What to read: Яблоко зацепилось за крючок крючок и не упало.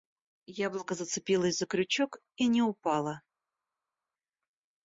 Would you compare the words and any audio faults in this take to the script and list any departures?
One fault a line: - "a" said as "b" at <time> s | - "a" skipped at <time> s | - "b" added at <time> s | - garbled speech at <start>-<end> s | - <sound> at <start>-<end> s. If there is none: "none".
- "крючок" skipped at 2.2 s